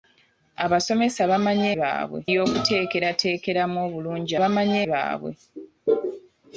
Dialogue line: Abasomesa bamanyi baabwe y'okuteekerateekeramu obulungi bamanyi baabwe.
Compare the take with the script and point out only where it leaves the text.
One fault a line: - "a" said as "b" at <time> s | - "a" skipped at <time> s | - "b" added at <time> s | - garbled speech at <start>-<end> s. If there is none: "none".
none